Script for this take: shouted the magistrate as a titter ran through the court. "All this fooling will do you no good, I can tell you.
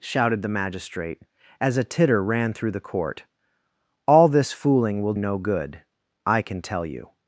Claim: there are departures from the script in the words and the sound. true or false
true